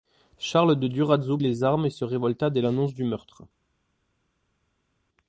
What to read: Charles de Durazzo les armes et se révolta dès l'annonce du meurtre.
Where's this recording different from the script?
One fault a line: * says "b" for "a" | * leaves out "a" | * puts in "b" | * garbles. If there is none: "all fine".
all fine